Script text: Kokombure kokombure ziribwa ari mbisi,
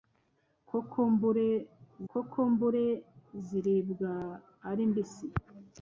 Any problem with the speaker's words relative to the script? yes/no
no